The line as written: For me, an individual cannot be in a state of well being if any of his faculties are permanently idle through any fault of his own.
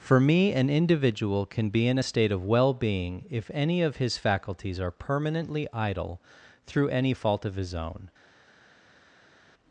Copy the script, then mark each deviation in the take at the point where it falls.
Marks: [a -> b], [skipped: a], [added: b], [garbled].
For me, an individual [cannot -> can] be in a state of well being if any of his faculties are permanently idle through any fault of his own.